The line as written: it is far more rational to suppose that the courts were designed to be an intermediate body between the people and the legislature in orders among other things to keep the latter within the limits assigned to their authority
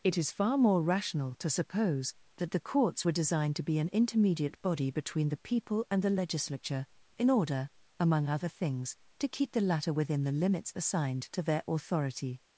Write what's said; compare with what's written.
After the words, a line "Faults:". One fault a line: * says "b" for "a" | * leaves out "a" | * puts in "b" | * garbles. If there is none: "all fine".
it is far more rational to suppose that the courts were designed to be an intermediate body between the people and the legislature in order among other things to keep the latter within the limits assigned to their authority
Faults:
* says "order" for "orders"